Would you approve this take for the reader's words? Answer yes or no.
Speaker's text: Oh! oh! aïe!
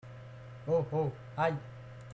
yes